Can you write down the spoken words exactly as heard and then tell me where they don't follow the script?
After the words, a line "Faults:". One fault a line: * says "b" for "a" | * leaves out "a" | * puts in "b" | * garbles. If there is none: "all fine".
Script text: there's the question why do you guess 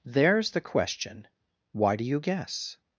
there's the question why do you guess
Faults:
all fine